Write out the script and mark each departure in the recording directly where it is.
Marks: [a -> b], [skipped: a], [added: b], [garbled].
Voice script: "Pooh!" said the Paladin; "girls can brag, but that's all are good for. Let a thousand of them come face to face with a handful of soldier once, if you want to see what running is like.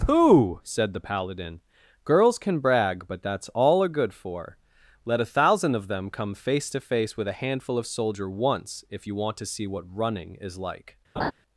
"Pooh!" said the Paladin; "girls can brag, but that's all are good for. Let a thousand of them come face to face with a handful of soldier once, if you want to see what running is like.